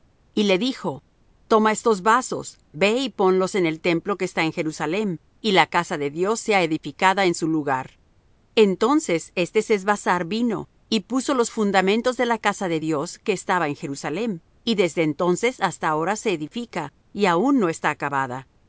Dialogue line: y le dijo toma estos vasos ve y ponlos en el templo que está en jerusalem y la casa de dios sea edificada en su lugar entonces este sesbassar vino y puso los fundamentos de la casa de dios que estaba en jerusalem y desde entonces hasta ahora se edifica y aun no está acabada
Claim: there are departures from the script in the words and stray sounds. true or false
false